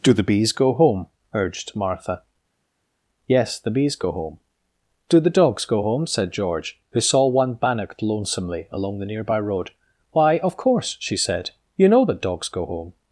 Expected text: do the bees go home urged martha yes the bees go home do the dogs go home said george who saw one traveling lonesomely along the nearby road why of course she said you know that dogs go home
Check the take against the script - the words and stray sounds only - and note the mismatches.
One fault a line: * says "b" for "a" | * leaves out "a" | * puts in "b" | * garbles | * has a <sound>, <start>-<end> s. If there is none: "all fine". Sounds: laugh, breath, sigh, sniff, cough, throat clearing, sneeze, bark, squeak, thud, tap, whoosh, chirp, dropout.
* says "bannocked" for "traveling"